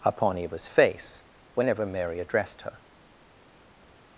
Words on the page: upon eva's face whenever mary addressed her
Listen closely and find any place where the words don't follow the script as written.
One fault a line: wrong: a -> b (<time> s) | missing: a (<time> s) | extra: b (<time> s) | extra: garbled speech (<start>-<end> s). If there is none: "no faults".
no faults